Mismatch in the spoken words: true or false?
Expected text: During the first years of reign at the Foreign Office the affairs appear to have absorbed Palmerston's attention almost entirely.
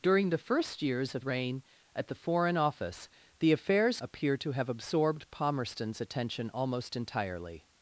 false